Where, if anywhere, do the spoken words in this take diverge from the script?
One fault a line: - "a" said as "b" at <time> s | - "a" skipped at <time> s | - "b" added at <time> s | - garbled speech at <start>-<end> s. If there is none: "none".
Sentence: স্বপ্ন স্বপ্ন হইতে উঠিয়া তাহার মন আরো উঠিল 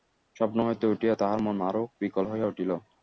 - "স্বপ্ন" skipped at 0.6 s
- "বিকল হইয়া" added at 2.0 s